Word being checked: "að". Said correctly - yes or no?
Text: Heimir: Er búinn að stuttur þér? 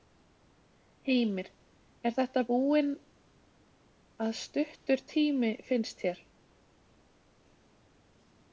yes